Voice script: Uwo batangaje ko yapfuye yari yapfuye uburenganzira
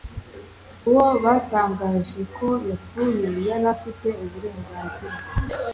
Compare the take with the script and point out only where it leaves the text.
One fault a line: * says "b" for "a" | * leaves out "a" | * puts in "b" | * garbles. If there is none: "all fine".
* says "afite" for "yapfuye"